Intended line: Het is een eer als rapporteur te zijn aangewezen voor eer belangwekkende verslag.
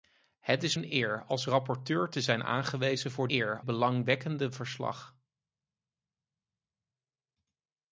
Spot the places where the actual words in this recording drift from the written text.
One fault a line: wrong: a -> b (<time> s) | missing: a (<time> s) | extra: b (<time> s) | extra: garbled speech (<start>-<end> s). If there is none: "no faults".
no faults